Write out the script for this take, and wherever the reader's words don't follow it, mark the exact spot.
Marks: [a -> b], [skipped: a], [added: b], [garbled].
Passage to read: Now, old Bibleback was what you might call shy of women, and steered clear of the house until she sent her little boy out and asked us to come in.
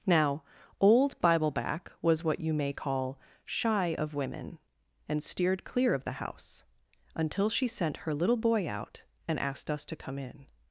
Now, old Bibleback was what you [might -> may] call shy of women, and steered clear of the house until she sent her little boy out and asked us to come in.